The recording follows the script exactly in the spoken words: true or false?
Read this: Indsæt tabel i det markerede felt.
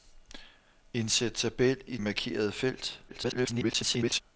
false